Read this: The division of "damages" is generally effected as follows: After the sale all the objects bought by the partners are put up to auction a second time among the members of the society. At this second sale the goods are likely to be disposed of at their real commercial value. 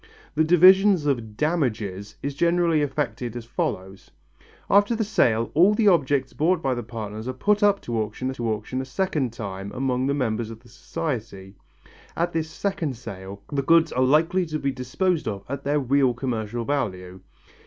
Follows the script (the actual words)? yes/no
no